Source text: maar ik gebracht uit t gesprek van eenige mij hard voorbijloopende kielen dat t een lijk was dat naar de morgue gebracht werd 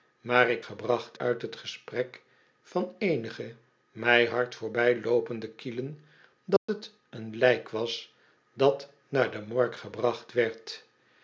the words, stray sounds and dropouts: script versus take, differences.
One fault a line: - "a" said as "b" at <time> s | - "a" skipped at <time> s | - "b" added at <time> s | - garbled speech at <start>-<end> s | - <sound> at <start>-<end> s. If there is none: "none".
- dropout at 6.6-6.7 s